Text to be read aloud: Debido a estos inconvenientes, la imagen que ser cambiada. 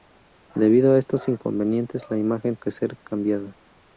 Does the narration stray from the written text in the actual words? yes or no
no